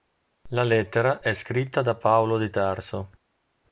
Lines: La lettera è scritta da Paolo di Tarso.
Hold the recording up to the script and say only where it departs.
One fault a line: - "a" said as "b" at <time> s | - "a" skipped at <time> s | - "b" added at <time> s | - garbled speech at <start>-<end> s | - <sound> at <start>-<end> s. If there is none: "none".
none